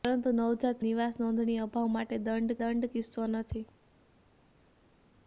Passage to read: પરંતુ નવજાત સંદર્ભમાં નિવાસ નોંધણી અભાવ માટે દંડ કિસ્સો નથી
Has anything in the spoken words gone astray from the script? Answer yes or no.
yes